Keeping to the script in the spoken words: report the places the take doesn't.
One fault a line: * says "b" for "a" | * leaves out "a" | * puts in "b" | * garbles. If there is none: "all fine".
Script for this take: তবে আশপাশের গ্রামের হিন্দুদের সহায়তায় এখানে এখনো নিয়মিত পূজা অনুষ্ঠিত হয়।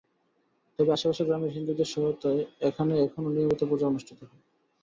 all fine